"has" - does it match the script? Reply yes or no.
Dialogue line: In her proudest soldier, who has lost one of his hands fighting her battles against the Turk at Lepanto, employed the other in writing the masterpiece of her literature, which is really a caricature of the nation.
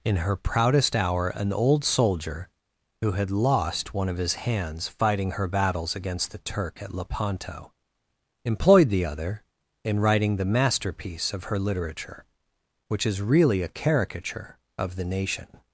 no